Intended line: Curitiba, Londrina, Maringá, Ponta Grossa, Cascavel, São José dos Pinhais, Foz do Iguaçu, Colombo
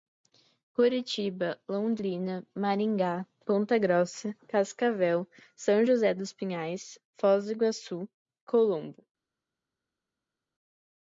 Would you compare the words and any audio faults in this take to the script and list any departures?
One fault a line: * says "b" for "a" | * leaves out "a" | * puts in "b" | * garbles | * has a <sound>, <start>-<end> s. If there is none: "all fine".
all fine